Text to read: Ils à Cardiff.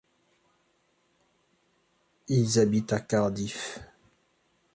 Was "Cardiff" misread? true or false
false